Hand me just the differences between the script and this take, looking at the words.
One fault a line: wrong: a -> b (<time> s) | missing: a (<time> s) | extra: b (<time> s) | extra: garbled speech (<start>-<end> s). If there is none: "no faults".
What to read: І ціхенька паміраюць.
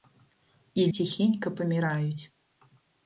no faults